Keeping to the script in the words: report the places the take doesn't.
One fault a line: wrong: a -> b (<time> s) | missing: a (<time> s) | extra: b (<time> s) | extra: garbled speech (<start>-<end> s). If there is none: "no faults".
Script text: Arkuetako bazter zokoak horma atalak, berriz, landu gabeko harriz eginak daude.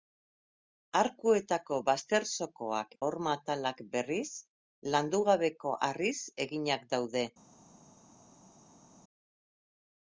no faults